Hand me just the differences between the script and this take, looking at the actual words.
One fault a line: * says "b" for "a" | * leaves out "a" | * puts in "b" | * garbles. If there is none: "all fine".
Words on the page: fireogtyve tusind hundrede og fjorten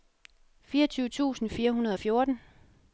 * puts in "fire"